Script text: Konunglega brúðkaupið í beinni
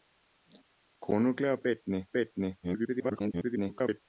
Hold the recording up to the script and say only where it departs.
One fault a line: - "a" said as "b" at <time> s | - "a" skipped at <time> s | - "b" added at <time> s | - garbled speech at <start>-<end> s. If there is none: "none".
- "brúðkaupið" said as "beinni" at 1.7 s
- garbled speech at 2.6-4.0 s